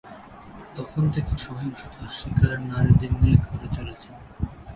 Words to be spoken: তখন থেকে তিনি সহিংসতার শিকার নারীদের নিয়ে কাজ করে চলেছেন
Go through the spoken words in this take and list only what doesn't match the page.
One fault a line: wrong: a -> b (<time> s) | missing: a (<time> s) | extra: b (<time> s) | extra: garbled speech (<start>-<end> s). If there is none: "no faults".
missing: তিনি (1.3 s)
missing: কাজ (3.4 s)